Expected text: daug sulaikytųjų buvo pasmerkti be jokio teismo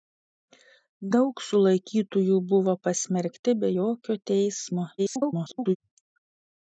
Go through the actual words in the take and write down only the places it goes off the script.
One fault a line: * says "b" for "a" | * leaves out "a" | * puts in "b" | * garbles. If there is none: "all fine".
* garbles